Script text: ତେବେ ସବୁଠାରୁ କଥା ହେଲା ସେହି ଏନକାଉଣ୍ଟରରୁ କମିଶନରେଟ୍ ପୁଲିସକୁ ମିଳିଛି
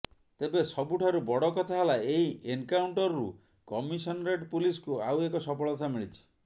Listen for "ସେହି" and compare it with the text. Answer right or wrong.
wrong